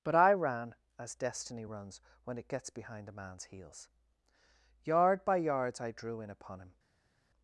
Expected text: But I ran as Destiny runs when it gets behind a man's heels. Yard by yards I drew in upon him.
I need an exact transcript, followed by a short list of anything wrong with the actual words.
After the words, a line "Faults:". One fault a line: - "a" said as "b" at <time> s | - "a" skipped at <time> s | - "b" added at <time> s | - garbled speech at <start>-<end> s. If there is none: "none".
But I ran as Destiny runs when it gets behind a man's heels. Yard by yards I drew in upon him.
Faults:
none